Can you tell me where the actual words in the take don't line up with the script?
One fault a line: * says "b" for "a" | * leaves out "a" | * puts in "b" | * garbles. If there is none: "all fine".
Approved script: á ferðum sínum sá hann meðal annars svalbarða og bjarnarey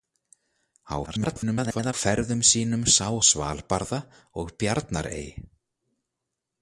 * garbles
* leaves out "hann meðal annars"